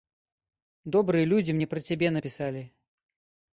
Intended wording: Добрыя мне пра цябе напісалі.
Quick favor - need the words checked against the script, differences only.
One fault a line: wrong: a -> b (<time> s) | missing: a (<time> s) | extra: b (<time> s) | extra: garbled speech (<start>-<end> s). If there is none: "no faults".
extra: людзі (1.4 s)